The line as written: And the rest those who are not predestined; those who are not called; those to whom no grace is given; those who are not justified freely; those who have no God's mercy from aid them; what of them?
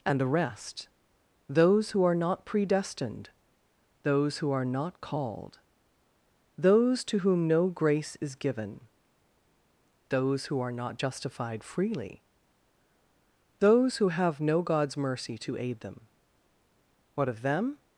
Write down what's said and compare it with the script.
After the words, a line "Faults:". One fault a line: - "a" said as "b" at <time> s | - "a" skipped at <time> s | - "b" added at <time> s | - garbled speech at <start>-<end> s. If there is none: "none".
And the rest those who are not predestined; those who are not called; those to whom no grace is given; those who are not justified freely; those who have no God's mercy to aid them; what of them?
Faults:
- "from" said as "to" at 15.4 s